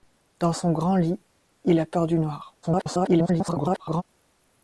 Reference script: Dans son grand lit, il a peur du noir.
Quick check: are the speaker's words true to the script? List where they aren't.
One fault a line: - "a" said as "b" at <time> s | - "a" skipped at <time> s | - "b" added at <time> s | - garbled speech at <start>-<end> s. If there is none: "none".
- garbled speech at 2.6-4.0 s